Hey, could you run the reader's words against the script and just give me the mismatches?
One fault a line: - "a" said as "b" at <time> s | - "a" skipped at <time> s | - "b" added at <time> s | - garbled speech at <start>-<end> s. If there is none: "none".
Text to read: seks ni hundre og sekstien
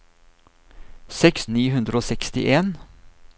none